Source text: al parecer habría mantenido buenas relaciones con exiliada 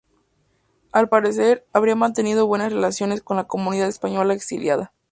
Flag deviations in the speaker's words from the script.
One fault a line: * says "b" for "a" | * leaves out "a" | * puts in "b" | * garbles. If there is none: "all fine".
* puts in "la comunidad española"